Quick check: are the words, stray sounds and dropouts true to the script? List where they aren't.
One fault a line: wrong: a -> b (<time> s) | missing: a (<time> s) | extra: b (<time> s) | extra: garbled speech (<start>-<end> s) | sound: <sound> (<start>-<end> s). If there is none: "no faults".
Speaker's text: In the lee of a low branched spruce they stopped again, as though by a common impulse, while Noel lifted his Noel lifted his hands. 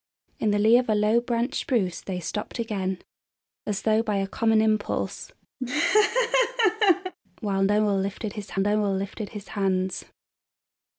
sound: laugh (5.6-7.1 s)